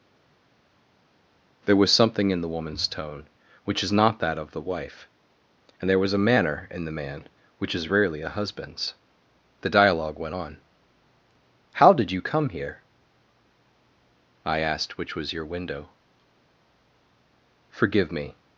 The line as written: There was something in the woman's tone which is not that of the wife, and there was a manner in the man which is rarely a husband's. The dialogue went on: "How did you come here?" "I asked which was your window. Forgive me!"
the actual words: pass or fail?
pass